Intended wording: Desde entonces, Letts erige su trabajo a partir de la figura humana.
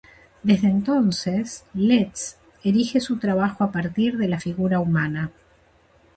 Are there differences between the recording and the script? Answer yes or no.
no